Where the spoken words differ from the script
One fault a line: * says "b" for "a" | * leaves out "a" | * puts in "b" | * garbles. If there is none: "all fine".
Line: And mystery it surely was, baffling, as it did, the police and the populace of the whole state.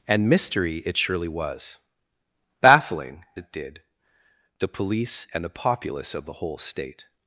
* leaves out "as"